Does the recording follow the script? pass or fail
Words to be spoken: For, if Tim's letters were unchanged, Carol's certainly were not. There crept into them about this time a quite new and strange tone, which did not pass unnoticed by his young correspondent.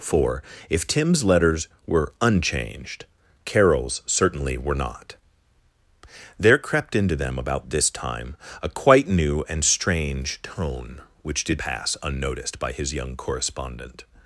fail